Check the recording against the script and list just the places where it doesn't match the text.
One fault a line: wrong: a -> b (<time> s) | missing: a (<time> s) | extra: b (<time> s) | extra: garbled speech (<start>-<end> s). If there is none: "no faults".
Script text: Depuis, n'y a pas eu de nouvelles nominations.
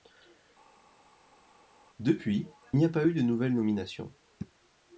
no faults